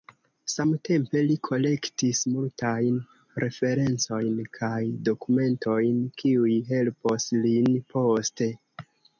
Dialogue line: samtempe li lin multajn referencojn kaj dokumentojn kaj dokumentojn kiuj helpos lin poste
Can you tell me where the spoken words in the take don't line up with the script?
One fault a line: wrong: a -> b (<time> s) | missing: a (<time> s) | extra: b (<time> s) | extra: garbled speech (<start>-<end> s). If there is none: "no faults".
wrong: lin -> kolektis (1.5 s)
missing: kaj dokumentojn (6.0 s)